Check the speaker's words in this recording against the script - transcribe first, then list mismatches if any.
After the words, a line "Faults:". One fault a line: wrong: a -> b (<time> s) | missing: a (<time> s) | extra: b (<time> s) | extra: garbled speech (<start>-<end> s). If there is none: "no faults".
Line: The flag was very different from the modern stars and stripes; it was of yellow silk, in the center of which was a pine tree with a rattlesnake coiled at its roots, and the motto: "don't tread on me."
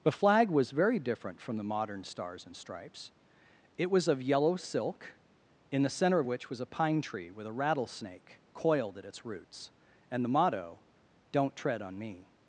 The flag was very different from the modern stars and stripes; it was of yellow silk, in the center of which was a pine tree with a rattlesnake coiled at its roots, and the motto: "don't tread on me."
Faults:
no faults